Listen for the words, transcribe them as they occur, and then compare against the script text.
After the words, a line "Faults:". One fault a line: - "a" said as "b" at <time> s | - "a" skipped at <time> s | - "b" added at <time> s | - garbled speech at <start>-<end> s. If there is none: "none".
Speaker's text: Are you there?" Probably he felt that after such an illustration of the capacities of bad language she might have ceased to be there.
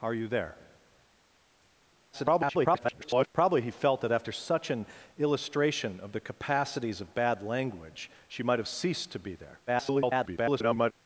Are you there?" [garbled] Probably he felt that after such an illustration of the capacities of bad language she might have ceased to be there. [garbled]
Faults:
- garbled speech at 2.1-3.3 s
- garbled speech at 9.7-10.9 s